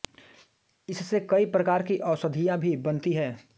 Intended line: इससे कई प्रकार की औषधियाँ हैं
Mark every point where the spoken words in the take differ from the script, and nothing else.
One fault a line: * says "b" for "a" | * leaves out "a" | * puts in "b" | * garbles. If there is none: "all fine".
* puts in "भी बनती"